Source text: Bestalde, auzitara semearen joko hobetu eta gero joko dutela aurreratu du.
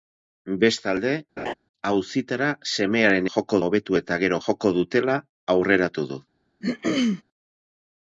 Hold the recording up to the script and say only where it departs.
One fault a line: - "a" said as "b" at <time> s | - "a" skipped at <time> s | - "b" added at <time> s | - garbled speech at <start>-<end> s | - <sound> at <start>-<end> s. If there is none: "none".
- laugh at 1.4-1.5 s
- throat clearing at 6.6-7.2 s